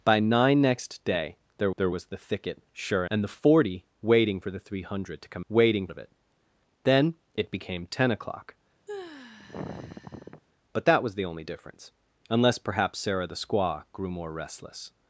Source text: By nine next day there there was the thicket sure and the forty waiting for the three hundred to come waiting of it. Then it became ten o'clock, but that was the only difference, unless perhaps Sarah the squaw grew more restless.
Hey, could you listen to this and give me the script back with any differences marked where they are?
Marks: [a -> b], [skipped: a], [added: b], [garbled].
By nine next day there there was the thicket sure and the forty waiting for the three hundred to come waiting of it. Then it became ten o'clock, but that was the only difference, unless perhaps Sarah the squaw grew more restless.